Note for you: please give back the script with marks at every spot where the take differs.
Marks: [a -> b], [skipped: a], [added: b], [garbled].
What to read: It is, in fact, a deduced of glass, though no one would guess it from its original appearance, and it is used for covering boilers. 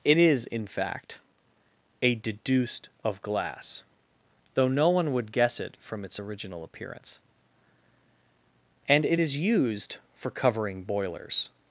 It is, in fact, a deduced of glass, though no one would guess it from its original appearance, and it is used for covering boilers.